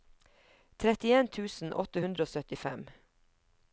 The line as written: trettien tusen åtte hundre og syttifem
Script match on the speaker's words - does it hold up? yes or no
yes